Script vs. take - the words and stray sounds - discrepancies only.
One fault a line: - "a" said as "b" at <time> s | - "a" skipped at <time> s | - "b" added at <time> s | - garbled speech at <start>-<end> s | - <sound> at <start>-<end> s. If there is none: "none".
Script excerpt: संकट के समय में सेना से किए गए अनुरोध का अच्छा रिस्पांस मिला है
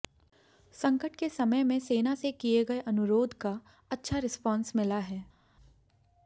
none